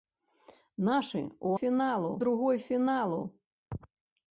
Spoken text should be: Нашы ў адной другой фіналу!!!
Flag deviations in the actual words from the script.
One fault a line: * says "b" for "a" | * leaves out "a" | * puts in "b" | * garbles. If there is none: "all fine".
* says "фіналу" for "адной"